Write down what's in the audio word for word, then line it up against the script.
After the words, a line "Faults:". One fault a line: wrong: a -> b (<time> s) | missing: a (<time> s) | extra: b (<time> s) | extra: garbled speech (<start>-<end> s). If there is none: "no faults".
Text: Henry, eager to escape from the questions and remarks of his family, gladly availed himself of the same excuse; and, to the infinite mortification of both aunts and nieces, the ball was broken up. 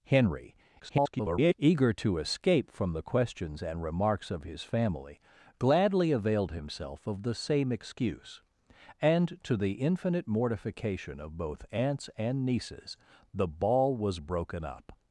Henry, [garbled] eager to escape from the questions and remarks of his family, gladly availed himself of the same excuse; and, to the infinite mortification of both aunts and nieces, the ball was broken up.
Faults:
extra: garbled speech (0.8-1.5 s)